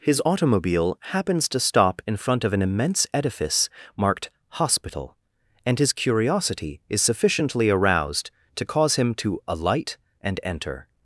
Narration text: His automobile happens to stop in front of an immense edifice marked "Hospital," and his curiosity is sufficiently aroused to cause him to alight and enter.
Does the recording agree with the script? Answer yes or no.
yes